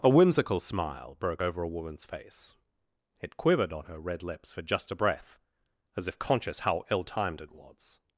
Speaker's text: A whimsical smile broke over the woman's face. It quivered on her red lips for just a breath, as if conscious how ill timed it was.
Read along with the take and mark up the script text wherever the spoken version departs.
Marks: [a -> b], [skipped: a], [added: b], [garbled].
A whimsical smile broke over [the -> a] woman's face. It quivered on her red lips for just a breath, as if conscious how ill timed it was.